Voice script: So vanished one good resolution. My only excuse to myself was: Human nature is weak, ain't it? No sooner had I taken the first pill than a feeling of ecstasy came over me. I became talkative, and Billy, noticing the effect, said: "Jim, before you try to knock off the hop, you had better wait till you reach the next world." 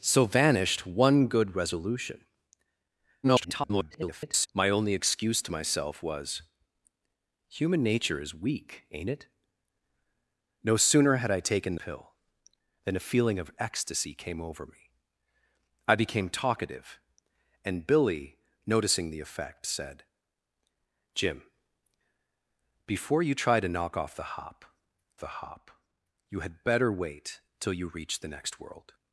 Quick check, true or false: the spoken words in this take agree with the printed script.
false